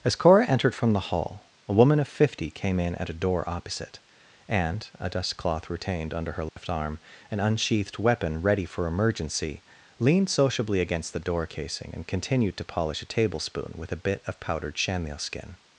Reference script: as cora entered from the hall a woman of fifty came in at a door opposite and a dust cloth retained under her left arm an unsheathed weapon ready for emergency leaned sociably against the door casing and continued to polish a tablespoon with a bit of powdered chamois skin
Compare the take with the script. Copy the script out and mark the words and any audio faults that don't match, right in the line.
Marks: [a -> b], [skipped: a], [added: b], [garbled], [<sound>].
as cora entered from the hall a woman of fifty came in at a door opposite and a dust cloth retained under her left [dropout] arm an unsheathed weapon ready for emergency leaned sociably against the door casing and continued to polish a tablespoon with a bit of powdered chamois skin